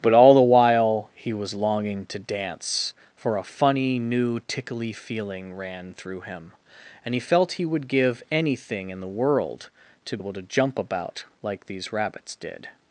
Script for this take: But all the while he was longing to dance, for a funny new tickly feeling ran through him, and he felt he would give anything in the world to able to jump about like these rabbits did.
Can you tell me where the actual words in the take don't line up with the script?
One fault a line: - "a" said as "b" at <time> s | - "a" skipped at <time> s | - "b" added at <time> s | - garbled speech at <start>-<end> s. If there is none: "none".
none